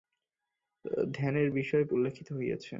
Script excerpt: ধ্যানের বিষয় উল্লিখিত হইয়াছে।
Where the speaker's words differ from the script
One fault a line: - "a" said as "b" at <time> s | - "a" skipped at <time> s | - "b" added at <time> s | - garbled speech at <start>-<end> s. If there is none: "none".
none